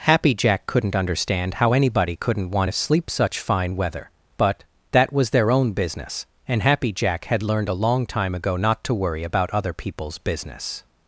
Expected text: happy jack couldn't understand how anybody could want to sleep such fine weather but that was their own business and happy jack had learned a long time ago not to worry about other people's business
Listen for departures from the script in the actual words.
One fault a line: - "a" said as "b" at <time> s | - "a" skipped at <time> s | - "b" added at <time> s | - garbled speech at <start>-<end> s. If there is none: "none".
- "could" said as "couldn't" at 2.1 s